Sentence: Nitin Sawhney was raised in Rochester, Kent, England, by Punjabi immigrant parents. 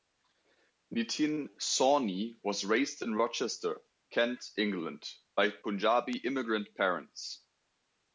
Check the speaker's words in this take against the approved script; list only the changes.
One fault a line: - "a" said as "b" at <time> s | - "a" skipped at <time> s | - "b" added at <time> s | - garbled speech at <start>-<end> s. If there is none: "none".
none